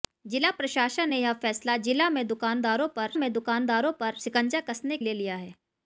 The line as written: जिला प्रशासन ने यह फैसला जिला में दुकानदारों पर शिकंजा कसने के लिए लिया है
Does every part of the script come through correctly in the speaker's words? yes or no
no